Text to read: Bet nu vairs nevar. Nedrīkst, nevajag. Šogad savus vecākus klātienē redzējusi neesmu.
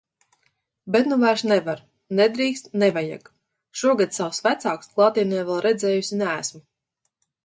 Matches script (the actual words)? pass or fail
fail